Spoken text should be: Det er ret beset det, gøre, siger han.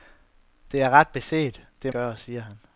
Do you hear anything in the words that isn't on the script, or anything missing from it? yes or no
no